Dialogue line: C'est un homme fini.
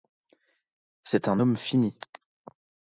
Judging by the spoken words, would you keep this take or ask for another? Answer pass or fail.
pass